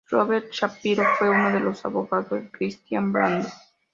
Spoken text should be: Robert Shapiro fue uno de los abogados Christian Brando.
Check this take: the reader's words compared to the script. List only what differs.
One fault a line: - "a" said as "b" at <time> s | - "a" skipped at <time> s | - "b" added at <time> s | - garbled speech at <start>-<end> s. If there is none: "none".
none